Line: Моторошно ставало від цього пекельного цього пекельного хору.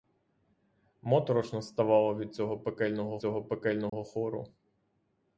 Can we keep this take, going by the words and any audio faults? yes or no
no